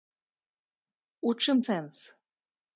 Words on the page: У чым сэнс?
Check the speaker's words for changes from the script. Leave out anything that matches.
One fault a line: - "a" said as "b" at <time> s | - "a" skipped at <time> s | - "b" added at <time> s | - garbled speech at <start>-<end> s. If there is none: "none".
none